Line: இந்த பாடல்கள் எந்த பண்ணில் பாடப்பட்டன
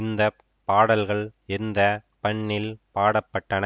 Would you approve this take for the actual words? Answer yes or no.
yes